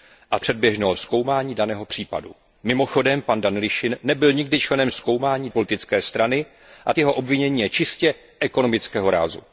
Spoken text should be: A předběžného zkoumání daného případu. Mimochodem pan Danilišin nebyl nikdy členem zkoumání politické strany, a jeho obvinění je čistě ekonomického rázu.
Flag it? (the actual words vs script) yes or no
no